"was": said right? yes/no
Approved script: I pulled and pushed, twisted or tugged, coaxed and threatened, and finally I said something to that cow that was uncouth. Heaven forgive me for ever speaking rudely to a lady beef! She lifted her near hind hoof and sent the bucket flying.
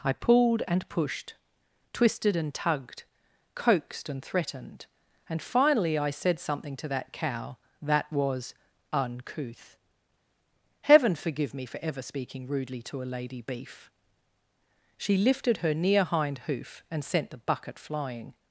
yes